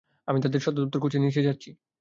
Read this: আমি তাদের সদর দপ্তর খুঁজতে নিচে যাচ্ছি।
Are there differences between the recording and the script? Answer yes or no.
no